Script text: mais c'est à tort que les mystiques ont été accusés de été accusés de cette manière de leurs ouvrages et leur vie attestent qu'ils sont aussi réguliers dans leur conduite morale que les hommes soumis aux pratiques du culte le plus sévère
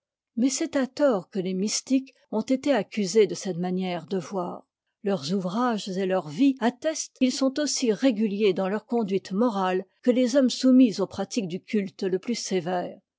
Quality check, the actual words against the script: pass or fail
fail